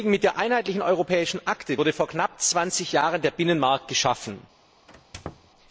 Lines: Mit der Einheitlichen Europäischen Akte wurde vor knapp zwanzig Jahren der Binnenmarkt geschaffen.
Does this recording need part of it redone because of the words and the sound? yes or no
yes